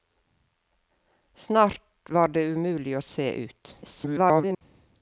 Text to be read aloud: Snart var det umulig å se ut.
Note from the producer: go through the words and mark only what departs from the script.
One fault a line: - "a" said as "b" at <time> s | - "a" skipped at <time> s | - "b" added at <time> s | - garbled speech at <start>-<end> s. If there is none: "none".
- garbled speech at 3.8-4.6 s